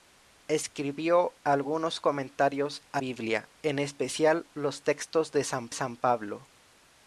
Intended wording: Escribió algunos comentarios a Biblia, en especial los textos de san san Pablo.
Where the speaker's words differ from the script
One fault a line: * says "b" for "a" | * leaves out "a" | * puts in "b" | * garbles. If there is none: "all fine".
all fine